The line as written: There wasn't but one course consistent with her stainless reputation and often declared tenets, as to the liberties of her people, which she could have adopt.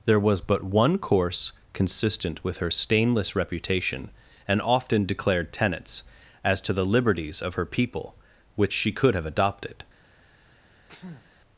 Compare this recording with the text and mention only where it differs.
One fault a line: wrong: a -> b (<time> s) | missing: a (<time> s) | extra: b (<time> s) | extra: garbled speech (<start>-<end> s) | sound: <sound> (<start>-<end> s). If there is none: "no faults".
wrong: wasn't -> was (0.2 s)
wrong: adopt -> adopted (9.3 s)
sound: sneeze (10.9-11.3 s)